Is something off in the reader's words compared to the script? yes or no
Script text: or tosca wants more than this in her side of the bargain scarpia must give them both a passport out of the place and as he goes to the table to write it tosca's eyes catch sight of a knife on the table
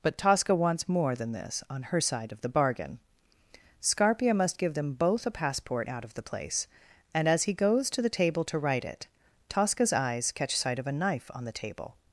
yes